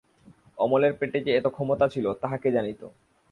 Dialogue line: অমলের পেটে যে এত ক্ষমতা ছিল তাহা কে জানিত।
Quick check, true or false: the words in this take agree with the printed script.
true